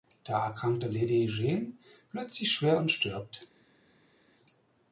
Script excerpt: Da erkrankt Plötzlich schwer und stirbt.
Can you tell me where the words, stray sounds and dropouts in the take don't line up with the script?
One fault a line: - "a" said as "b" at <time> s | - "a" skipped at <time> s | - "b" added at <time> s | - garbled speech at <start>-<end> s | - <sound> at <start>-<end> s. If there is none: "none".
- "Lady Jane" added at 0.8 s